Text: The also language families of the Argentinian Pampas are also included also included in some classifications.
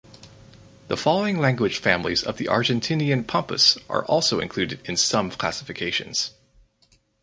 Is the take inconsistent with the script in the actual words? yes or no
yes